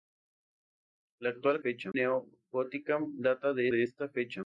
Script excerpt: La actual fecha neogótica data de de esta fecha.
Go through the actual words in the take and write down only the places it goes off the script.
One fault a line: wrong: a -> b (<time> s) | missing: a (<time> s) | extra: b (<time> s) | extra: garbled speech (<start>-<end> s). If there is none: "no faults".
no faults